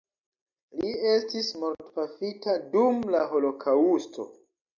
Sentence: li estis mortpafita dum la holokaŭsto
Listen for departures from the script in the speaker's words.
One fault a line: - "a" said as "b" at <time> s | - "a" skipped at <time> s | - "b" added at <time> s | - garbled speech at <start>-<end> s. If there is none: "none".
none